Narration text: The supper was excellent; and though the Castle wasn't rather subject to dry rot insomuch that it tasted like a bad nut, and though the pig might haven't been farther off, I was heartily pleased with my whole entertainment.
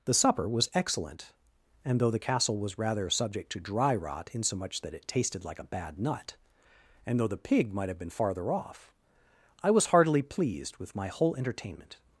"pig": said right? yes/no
yes